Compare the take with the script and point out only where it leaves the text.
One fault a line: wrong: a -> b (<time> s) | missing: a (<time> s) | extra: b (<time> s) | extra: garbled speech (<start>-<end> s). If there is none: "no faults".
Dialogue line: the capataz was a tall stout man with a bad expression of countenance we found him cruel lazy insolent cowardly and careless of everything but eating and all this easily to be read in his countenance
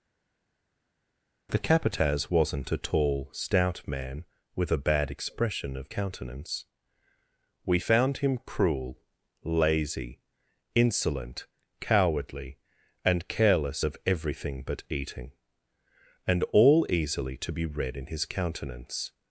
wrong: was -> wasn't (2.3 s)
missing: this (16.9 s)